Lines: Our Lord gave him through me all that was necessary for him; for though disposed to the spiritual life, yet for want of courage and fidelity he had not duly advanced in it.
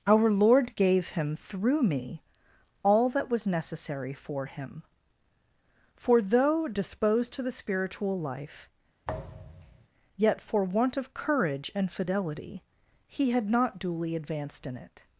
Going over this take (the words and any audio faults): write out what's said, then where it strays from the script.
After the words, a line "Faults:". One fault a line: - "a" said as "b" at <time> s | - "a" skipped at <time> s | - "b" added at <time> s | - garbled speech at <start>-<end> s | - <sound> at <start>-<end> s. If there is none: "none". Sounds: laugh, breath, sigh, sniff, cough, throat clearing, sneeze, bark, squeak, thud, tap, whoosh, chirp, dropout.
Our Lord gave him through me all that was necessary for him; for though disposed to the spiritual life, yet for want of courage and fidelity he had not duly advanced in it.
Faults:
- thud at 9.0-9.9 s